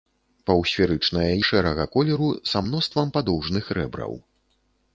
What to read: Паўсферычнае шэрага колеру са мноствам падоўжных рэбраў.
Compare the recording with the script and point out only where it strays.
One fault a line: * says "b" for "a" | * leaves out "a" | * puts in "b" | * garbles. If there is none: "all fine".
all fine